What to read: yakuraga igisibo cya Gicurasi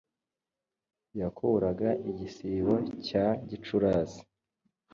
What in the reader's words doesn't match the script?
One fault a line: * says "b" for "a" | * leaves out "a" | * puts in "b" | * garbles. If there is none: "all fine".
all fine